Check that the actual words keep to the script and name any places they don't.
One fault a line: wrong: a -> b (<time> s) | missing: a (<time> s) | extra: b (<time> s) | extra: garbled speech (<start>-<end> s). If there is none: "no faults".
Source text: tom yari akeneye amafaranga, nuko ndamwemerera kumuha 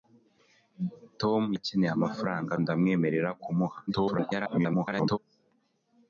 missing: yari (1.4 s)
missing: nuko (2.5 s)
extra: garbled speech (3.9-5.2 s)